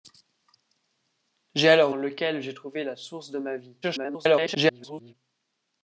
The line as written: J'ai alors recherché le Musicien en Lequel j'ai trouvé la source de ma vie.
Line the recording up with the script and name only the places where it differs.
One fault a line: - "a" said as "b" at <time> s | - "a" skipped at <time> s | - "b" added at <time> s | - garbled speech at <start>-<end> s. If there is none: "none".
- "recherché le Musicien" skipped at 1.9 s
- garbled speech at 3.8-5.1 s